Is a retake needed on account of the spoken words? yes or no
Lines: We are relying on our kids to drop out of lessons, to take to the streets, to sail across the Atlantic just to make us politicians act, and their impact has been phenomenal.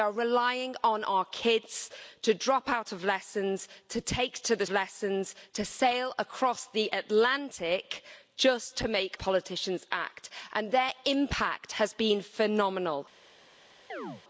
yes